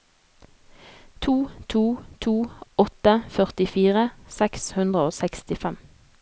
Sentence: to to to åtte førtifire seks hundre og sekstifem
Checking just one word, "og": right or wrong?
right